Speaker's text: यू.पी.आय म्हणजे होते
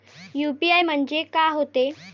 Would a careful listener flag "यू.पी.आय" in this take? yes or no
no